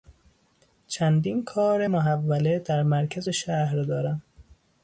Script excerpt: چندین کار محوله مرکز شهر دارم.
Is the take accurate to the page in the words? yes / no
no